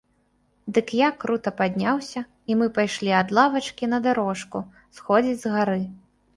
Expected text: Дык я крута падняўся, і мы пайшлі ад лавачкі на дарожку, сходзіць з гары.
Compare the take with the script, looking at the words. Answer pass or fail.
pass